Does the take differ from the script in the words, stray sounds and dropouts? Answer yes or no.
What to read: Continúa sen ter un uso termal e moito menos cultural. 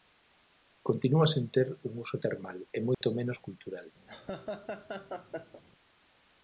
yes